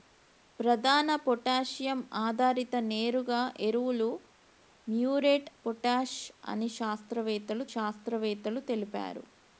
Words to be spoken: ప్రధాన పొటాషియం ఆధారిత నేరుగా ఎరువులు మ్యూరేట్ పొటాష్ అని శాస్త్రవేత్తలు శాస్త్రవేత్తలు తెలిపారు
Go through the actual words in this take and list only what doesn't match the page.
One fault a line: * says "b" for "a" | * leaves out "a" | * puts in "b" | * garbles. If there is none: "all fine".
all fine